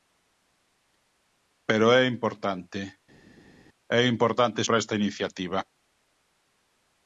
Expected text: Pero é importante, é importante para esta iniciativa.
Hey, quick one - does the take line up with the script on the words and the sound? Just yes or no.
yes